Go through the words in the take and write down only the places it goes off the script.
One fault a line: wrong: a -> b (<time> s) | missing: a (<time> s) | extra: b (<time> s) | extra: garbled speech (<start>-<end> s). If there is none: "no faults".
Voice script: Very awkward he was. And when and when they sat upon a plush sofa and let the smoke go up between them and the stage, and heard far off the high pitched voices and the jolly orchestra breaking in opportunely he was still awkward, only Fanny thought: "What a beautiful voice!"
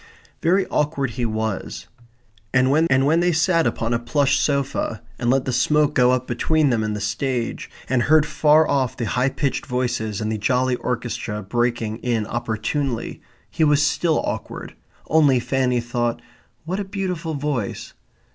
no faults